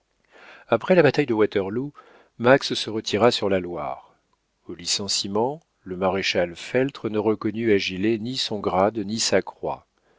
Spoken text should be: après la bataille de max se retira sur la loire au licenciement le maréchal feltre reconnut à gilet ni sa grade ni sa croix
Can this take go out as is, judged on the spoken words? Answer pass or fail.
fail